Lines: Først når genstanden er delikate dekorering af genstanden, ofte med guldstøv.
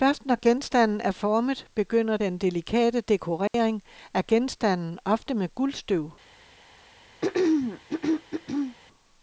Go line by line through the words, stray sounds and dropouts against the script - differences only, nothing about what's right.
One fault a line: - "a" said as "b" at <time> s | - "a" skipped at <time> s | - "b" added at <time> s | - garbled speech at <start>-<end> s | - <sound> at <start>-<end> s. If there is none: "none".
- "formet begynder den" added at 1.1 s
- dropout at 3.5-3.5 s
- throat clearing at 7.2-8.8 s